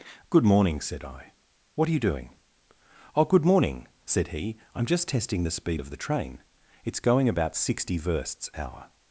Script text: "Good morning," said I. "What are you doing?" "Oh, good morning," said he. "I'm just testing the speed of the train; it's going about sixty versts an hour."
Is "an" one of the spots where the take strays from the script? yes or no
yes